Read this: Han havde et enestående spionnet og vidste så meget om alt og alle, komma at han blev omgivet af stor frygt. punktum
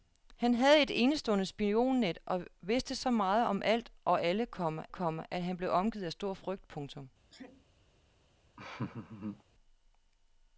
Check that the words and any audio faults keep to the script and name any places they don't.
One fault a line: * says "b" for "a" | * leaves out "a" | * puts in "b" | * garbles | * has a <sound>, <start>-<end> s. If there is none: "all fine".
* puts in "komma"
* has a sneeze, 7.3-7.7 s
* has a laugh, 8.6-9.4 s